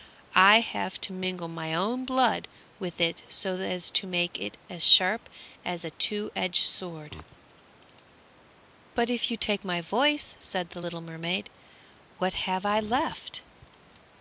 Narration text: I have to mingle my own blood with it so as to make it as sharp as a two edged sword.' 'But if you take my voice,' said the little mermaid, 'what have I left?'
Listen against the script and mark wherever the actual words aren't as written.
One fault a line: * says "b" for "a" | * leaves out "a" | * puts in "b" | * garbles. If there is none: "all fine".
all fine